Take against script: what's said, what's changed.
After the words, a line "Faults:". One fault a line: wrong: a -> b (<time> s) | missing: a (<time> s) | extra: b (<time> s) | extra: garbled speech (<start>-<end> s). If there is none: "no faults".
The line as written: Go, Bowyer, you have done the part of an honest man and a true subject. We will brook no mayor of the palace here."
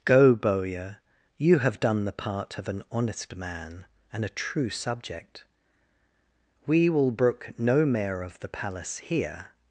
Go, Bowyer, you have done the part of an honest man and a true subject. We will brook no mayor of the palace here."
Faults:
no faults